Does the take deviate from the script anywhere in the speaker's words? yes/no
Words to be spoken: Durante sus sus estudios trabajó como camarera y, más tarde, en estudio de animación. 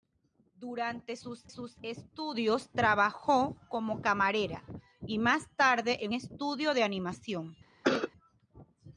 no